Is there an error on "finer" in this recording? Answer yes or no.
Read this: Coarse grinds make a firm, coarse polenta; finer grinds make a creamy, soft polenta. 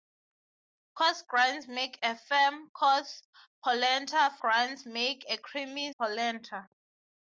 yes